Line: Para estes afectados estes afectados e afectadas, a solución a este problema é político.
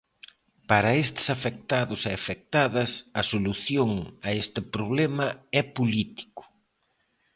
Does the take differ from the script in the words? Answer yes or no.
yes